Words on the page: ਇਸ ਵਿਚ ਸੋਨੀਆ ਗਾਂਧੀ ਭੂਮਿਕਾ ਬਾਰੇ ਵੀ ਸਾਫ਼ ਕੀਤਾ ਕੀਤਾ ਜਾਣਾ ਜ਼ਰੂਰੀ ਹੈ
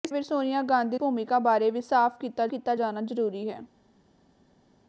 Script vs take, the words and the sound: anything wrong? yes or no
no